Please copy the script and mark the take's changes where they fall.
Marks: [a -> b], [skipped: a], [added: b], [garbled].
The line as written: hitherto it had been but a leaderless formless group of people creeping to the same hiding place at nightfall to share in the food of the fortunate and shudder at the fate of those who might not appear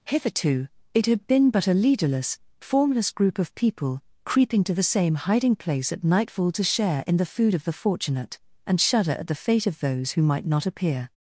hitherto it had been but a leaderless formless group of people creeping to the same hiding place at nightfall to share in the food of the fortunate and shudder at the fate of those who might not appear